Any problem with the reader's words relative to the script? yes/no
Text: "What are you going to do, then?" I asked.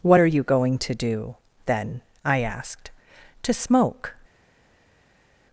yes